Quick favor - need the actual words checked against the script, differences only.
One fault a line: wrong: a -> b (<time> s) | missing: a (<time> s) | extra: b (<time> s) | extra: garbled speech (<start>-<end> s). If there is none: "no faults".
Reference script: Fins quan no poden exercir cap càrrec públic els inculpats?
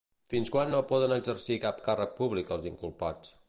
no faults